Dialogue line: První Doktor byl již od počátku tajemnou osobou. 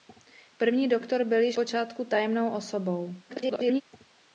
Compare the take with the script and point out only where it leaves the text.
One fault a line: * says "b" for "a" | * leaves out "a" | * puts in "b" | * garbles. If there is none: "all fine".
* leaves out "od"
* garbles